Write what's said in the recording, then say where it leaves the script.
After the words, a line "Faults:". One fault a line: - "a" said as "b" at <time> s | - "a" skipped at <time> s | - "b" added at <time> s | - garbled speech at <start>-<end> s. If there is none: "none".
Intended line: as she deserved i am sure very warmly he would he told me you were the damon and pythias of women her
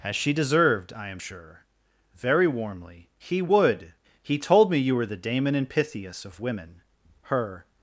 as she deserved i am sure very warmly he would he told me you were the damon and pythias of women her
Faults:
none